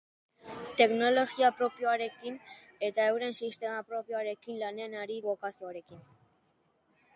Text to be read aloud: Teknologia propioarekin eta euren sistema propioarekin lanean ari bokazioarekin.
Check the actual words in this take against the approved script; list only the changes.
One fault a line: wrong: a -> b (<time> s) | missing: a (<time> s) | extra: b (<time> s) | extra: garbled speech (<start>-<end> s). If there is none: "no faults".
no faults